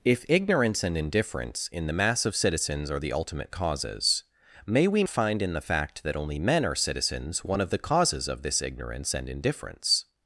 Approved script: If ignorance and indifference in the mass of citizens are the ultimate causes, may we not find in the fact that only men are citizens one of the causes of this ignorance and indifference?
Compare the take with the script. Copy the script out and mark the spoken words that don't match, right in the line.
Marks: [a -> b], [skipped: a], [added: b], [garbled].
If ignorance and indifference in the mass of citizens are the ultimate causes, may we [skipped: not] find in the fact that only men are citizens one of the causes of this ignorance and indifference?